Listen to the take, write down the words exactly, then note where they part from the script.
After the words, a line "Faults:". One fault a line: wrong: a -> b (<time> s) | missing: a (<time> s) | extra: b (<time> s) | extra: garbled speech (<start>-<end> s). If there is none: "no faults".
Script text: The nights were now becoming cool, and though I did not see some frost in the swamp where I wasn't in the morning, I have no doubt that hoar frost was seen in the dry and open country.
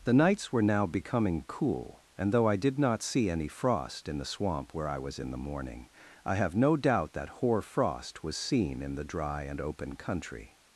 The nights were now becoming cool, and though I did not see any frost in the swamp where I was in the morning, I have no doubt that hoar frost was seen in the dry and open country.
Faults:
wrong: some -> any (3.3 s)
wrong: wasn't -> was (5.0 s)